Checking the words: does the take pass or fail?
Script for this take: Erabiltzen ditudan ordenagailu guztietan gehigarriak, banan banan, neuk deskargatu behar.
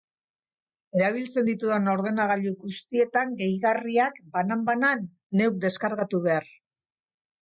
pass